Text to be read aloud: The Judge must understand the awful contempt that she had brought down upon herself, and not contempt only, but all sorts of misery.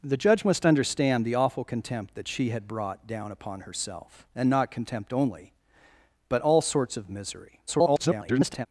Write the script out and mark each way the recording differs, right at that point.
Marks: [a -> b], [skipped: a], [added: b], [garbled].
The Judge must understand the awful contempt that she had brought down upon herself, and not contempt only, but all sorts of misery. [garbled]